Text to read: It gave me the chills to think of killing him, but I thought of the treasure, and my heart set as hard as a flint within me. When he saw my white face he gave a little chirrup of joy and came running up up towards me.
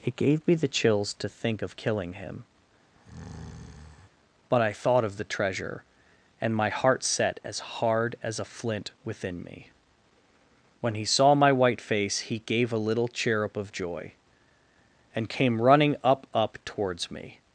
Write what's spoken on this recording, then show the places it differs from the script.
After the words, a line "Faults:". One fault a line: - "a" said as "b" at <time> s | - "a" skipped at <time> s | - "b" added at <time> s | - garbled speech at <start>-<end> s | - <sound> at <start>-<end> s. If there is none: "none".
It gave me the chills to think of killing him, but I thought of the treasure, and my heart set as hard as a flint within me. When he saw my white face he gave a little chirrup of joy and came running up up towards me.
Faults:
- breath at 2.9-4.1 s